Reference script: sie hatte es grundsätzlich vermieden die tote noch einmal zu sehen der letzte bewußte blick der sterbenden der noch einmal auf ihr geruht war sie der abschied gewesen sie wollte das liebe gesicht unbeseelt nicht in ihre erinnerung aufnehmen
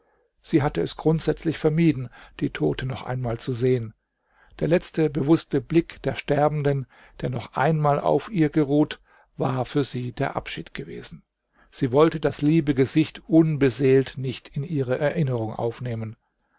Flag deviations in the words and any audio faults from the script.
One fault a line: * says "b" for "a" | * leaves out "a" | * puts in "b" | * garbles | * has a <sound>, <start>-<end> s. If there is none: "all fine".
* puts in "für"